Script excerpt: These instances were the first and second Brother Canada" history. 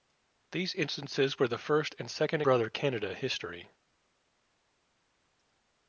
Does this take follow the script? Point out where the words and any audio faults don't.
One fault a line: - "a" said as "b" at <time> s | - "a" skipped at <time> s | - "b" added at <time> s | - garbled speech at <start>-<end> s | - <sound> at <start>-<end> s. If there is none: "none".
none